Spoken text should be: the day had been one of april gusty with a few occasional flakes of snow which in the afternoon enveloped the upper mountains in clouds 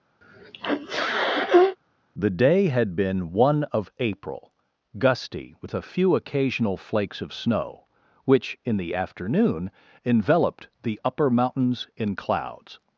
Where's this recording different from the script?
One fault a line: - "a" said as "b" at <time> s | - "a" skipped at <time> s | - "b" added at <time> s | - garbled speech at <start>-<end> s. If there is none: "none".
none